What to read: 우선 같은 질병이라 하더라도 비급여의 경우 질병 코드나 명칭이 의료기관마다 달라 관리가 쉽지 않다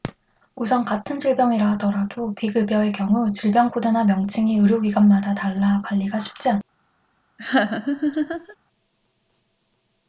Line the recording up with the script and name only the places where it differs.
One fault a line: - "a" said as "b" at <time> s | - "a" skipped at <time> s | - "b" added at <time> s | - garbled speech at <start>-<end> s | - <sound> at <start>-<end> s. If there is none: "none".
- laugh at 7.4-8.6 s